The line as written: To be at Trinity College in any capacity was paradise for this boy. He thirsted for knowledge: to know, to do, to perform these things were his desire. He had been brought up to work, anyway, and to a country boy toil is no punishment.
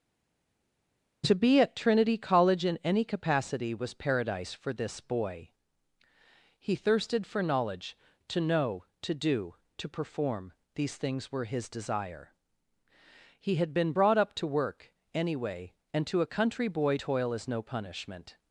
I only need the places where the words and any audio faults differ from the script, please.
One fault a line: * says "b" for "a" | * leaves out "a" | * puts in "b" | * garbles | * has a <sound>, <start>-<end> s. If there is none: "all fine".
all fine